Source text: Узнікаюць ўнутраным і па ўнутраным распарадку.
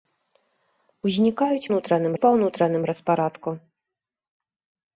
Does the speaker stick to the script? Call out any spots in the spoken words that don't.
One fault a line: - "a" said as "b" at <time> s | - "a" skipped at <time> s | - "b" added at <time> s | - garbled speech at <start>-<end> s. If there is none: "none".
none